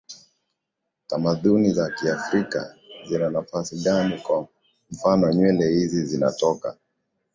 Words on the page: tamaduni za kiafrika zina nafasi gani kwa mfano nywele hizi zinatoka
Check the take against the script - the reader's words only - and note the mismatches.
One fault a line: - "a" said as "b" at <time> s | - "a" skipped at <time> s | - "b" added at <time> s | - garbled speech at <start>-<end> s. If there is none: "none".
none